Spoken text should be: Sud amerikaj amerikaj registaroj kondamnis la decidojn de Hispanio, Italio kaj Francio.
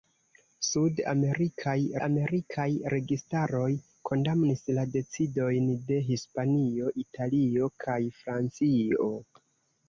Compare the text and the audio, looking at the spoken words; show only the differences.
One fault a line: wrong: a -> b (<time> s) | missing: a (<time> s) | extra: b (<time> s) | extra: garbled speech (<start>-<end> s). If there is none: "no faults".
no faults